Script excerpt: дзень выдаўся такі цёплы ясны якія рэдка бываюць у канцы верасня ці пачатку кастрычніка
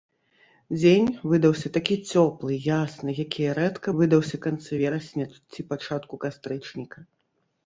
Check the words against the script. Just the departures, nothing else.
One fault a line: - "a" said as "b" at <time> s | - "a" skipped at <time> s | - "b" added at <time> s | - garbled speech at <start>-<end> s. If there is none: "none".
- "бываюць" said as "выдаўся" at 4.0 s